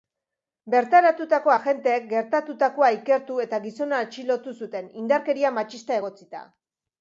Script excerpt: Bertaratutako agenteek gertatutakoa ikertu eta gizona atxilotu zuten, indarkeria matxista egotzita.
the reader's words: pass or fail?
pass